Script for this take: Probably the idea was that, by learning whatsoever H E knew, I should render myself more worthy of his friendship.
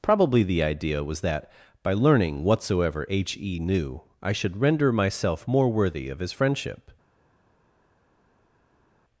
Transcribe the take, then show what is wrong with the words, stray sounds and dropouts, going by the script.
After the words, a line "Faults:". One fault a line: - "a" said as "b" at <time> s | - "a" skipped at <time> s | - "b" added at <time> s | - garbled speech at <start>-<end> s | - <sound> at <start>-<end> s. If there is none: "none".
Probably the idea was that, by learning whatsoever H E knew, I should render myself more worthy of his friendship.
Faults:
none